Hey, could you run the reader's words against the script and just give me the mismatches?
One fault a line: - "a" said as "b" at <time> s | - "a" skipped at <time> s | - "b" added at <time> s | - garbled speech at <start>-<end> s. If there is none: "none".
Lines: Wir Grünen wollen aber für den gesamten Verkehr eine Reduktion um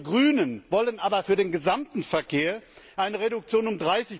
none